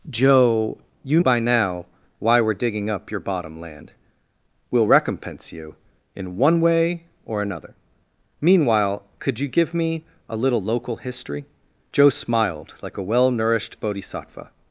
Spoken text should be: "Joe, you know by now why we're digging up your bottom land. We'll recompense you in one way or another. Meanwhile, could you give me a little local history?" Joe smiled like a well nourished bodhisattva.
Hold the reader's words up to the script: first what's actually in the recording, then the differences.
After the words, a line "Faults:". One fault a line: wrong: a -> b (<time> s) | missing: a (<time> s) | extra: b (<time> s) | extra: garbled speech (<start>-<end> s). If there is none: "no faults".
"Joe, you by now why we're digging up your bottom land. We'll recompense you in one way or another. Meanwhile, could you give me a little local history?" Joe smiled like a well nourished bodhisattva.
Faults:
missing: know (1.2 s)